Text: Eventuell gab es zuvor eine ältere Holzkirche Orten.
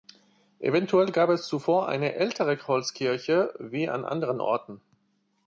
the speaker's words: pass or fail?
fail